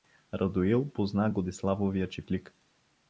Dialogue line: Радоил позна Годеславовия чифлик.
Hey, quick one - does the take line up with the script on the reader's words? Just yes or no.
yes